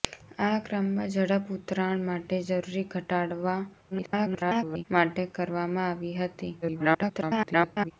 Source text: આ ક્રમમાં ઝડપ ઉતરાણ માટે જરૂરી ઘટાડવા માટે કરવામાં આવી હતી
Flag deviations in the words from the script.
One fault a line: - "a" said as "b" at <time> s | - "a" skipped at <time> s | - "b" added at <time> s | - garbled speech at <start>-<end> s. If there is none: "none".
- garbled speech at 3.9-4.8 s
- garbled speech at 6.6-7.9 s